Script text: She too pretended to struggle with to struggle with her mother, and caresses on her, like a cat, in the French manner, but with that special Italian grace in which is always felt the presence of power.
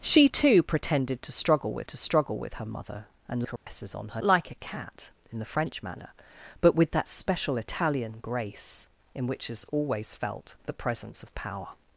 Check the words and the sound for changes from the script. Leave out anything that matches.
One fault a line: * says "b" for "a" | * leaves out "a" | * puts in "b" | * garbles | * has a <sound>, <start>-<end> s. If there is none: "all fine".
* has a dropout, 3.6-3.7 s